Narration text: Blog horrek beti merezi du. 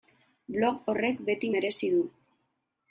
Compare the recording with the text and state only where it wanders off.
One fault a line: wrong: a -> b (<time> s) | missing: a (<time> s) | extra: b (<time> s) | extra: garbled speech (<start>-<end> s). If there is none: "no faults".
no faults